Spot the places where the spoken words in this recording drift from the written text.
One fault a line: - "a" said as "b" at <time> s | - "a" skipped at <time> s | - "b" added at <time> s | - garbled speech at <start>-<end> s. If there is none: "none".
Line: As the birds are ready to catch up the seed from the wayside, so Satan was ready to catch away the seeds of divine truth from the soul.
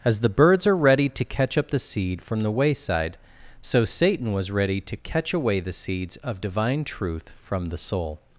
none